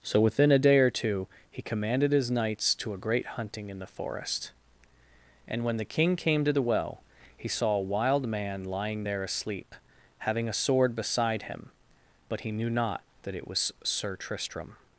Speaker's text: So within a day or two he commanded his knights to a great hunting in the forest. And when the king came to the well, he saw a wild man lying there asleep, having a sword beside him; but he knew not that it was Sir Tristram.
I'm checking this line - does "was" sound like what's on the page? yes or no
yes